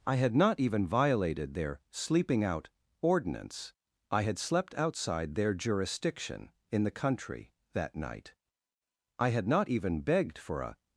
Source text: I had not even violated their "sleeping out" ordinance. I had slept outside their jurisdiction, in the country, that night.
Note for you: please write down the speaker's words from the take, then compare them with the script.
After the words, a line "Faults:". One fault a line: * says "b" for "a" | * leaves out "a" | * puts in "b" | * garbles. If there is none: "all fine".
I had not even violated their "sleeping out" ordinance. I had slept outside their jurisdiction, in the country, that night. I had not even begged for a
Faults:
* puts in "I had not even begged for a"